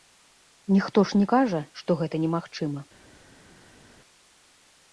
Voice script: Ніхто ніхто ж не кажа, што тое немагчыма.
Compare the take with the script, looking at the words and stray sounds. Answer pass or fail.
fail